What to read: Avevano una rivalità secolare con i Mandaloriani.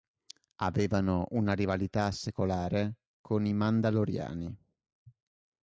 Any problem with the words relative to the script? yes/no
no